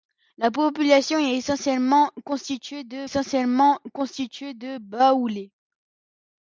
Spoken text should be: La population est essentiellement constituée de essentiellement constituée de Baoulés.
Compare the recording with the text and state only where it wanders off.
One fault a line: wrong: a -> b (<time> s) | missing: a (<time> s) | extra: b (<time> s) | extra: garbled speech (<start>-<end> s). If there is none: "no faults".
no faults